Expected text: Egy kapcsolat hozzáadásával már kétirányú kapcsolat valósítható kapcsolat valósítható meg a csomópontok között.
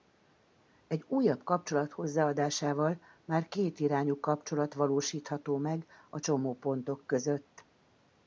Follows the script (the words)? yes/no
no